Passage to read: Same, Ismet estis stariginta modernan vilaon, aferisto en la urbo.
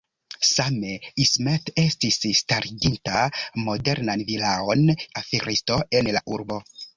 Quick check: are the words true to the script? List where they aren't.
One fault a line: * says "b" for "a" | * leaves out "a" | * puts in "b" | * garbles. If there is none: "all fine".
all fine